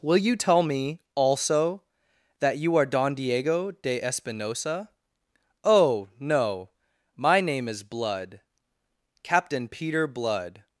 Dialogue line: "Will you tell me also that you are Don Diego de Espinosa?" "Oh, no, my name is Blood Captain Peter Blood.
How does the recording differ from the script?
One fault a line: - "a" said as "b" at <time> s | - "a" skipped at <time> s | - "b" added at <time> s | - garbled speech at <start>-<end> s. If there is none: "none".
none